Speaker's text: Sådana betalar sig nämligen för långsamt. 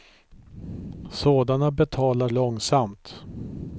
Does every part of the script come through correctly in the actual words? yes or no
no